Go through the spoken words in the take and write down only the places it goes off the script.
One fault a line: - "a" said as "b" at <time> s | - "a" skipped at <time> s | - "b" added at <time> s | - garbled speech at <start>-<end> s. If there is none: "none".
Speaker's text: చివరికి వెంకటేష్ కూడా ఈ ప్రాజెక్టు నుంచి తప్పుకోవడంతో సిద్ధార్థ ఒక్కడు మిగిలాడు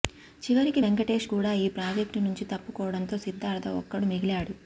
none